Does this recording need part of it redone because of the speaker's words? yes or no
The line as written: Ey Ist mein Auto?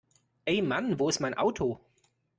yes